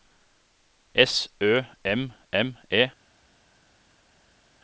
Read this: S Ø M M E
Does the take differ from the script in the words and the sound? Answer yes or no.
no